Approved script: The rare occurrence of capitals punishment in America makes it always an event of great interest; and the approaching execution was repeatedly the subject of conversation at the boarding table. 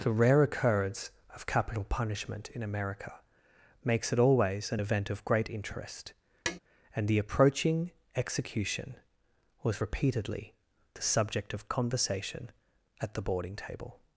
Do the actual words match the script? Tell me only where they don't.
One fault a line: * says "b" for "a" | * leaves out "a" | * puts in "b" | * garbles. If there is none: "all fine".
* says "capital" for "capitals"